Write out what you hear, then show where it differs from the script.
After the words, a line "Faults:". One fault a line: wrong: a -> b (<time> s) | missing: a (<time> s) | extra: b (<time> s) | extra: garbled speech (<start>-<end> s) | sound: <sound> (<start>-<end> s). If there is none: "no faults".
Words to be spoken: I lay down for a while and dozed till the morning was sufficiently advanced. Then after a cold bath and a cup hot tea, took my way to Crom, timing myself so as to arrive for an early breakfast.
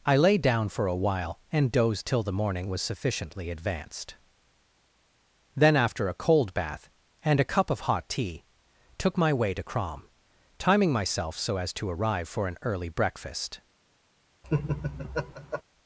I lay down for a while and dozed till the morning was sufficiently advanced. Then after a cold bath and a cup of hot tea, took my way to Crom, timing myself so as to arrive for an early breakfast.
Faults:
extra: of (7.7 s)
sound: laugh (14.4-15.6 s)